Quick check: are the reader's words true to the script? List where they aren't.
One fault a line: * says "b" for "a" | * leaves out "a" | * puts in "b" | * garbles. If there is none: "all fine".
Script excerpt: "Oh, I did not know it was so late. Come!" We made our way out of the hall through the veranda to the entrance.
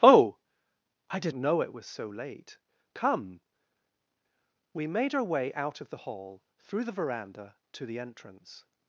* leaves out "not"